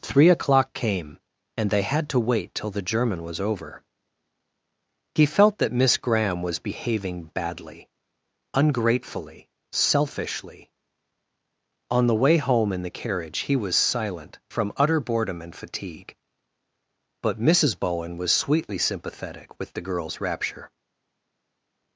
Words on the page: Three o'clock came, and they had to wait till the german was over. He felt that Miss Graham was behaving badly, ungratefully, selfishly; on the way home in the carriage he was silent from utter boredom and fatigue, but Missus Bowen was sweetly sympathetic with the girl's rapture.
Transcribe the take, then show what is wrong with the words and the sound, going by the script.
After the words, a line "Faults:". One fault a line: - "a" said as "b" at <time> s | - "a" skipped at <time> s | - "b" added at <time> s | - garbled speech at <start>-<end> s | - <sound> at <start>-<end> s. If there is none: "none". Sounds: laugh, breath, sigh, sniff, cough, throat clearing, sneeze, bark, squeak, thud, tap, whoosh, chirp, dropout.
Three o'clock came, and they had to wait till the german was over. He felt that Miss Graham was behaving badly, ungratefully, selfishly; on the way home in the carriage he was silent from utter boredom and fatigue, but Missus Bowen was sweetly sympathetic with the girl's rapture.
Faults:
none